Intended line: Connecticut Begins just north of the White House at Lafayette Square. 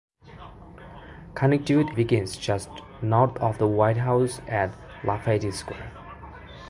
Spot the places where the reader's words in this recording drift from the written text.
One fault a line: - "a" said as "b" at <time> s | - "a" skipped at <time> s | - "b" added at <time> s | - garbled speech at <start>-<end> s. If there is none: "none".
none